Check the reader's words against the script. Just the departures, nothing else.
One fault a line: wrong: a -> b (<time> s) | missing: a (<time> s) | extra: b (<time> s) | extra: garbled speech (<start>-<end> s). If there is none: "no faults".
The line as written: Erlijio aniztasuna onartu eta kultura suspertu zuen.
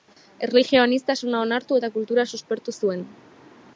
no faults